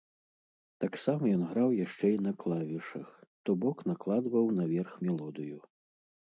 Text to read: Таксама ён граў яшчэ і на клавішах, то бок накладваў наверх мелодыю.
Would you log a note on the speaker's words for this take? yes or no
no